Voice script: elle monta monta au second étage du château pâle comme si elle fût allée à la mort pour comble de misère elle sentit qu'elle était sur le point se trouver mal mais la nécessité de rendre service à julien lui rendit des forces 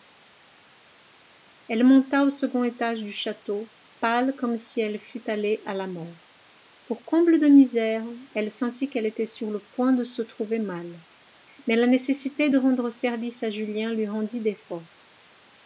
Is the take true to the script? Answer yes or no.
no